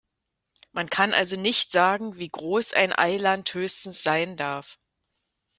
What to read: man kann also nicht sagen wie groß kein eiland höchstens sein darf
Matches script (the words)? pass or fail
fail